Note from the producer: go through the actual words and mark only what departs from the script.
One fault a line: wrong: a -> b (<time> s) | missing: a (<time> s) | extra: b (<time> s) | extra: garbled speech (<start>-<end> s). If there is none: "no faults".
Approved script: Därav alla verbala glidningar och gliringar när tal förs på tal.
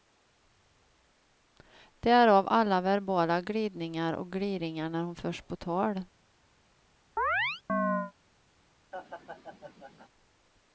wrong: tal -> hon (5.0 s)